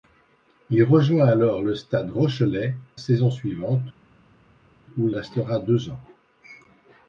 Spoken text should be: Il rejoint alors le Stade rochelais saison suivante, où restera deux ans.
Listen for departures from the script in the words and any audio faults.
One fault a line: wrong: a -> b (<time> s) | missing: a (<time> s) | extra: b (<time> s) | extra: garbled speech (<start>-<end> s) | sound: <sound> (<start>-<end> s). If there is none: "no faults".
no faults